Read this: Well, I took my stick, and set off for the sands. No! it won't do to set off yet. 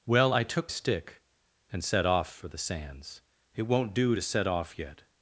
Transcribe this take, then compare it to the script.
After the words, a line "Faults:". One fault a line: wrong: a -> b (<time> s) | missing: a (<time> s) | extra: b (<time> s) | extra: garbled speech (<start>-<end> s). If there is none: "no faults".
Well, I took stick, and set off for the sands! It won't do to set off yet.
Faults:
missing: my (0.7 s)
missing: No (3.2 s)